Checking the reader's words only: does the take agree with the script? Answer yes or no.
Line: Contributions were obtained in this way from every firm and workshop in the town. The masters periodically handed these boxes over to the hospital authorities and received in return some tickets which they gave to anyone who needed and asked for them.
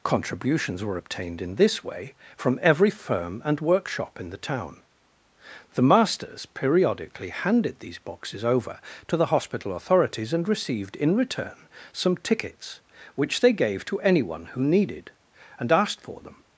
yes